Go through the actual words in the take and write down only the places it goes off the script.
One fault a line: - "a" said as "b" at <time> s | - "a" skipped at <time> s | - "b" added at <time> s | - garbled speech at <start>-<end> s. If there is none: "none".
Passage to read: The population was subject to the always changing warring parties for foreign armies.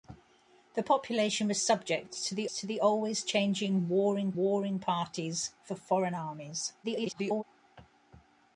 - "to the" added at 2.5 s
- "warring" added at 4.4 s
- garbled speech at 6.8-7.4 s